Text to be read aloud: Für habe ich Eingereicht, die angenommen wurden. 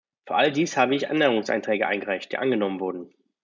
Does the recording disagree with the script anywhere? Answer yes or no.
yes